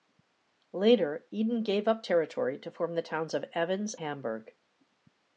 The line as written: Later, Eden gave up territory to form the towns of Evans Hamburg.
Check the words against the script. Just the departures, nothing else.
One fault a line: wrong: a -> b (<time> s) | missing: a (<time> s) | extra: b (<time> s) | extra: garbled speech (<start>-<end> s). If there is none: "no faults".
no faults